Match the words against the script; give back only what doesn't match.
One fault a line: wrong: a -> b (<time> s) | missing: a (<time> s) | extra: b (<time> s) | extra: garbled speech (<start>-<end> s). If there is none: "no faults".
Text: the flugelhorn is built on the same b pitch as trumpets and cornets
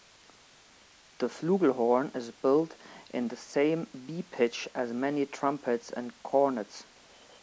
wrong: on -> in (3.1 s)
extra: many (4.9 s)